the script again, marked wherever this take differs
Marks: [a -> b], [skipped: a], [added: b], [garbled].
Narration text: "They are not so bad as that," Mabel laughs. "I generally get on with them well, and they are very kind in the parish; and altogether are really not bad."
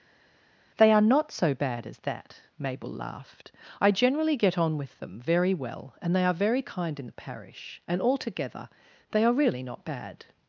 "They are not so bad as that," Mabel [laughs. -> laughed] "I generally get on with them [added: very] well, and they are very kind in the parish; and altogether [added: they] are really not bad."